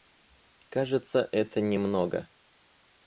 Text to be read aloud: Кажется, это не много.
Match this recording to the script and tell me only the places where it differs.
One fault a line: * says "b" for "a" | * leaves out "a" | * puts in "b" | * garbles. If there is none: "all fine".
all fine